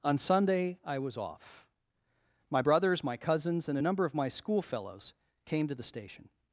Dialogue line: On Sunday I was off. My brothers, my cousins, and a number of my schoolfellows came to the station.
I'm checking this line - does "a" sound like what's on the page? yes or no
yes